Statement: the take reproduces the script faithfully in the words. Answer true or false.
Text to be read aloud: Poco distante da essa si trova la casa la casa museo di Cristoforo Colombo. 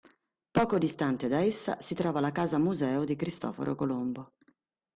false